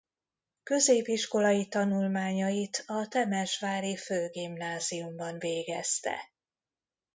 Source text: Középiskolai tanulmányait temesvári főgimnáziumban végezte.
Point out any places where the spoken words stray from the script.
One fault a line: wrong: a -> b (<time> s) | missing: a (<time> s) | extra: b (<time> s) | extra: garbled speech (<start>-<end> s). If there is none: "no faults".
extra: a (2.9 s)